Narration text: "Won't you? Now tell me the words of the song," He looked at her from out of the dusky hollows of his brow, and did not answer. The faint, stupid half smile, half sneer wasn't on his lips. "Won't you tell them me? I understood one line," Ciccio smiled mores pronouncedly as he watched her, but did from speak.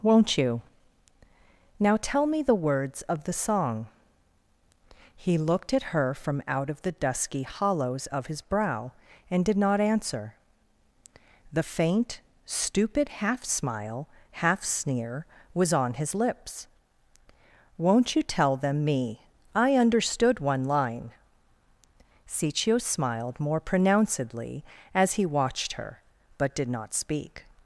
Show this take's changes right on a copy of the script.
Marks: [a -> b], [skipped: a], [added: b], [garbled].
"Won't you? Now tell me the words of the song," He looked at her from out of the dusky hollows of his brow, and did not answer. The faint, stupid half smile, half sneer [wasn't -> was] on his lips. "Won't you tell them me? I understood one line," Ciccio smiled [mores -> more] pronouncedly as he watched her, but did [from -> not] speak.